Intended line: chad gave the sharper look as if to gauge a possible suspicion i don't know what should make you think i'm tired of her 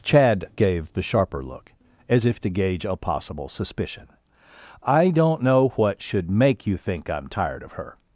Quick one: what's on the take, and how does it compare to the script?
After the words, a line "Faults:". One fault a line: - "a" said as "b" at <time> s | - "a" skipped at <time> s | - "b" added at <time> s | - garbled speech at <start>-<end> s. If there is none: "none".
chad gave the sharper look as if to gauge a possible suspicion i don't know what should make you think i'm tired of her
Faults:
none